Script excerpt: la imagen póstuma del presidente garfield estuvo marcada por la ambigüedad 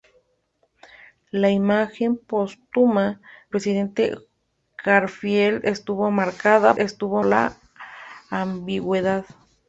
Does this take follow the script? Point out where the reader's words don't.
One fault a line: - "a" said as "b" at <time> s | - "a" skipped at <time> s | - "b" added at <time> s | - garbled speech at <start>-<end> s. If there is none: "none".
- "del" skipped at 3.2 s
- "por" said as "estuvo" at 6.8 s